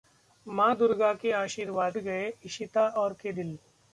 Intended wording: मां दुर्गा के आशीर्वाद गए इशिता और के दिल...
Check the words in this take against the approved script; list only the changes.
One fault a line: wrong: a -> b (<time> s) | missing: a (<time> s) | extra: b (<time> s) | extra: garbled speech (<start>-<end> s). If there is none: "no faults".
no faults